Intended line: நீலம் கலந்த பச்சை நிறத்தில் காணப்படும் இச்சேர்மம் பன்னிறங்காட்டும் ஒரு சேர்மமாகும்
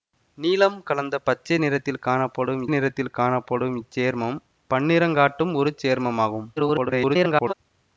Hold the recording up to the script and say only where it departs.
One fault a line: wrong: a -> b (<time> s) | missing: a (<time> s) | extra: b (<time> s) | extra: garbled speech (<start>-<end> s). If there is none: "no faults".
extra: நிறத்தில் காணப்படும் (2.7 s)
extra: garbled speech (6.6-7.5 s)